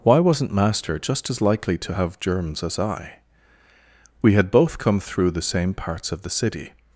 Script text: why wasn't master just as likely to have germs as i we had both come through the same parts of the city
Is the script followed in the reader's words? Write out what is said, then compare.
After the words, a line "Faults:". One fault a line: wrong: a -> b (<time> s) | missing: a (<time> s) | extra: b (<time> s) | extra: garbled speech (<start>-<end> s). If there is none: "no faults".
why wasn't master just as likely to have germs as i we had both come through the same parts of the city
Faults:
no faults